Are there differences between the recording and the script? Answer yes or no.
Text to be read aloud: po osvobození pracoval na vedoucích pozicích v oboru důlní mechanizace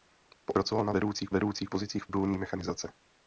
yes